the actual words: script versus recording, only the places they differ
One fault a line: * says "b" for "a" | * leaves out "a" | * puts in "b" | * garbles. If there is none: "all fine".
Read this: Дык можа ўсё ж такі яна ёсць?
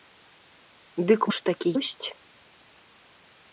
* leaves out "можа ўсё"
* leaves out "яна"